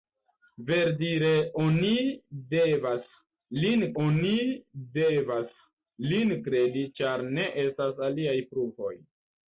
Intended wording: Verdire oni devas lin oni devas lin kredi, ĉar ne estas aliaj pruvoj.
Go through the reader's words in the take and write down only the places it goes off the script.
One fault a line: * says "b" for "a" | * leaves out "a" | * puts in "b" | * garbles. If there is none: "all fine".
all fine